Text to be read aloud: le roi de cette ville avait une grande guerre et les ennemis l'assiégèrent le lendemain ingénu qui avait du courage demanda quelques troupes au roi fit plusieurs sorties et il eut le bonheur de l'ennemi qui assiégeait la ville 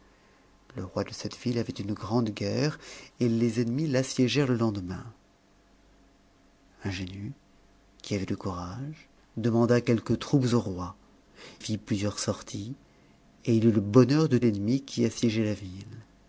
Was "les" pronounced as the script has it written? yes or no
yes